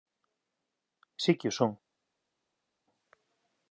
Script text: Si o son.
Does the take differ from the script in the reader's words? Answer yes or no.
yes